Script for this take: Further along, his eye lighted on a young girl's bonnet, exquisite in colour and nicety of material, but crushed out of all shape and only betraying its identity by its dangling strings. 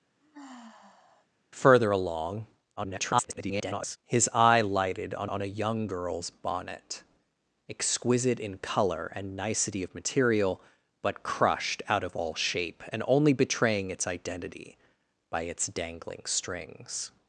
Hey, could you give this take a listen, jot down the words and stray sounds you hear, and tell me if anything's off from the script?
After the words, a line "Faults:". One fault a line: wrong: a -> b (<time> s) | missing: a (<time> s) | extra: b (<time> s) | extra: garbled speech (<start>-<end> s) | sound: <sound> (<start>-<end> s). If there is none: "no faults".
Further along, [garbled] his eye lighted on on a young girl's bonnet, exquisite in colour and nicety of material, but crushed out of all shape and only betraying its identity by its dangling strings.
Faults:
sound: sigh (0.2-1.3 s)
extra: garbled speech (2.8-4.0 s)
extra: on (5.2 s)